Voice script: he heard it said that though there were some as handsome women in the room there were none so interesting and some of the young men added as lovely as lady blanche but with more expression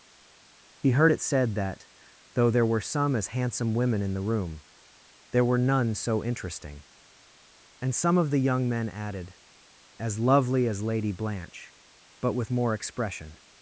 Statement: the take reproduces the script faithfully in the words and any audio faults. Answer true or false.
true